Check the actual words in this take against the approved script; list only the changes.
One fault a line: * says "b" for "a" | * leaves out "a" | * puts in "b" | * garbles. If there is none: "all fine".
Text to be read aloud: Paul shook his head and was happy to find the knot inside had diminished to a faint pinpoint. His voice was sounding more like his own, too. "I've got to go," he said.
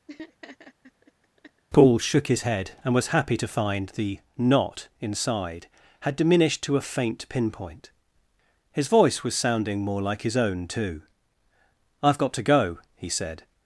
all fine